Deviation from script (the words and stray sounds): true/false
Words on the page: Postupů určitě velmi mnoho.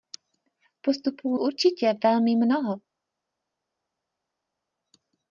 false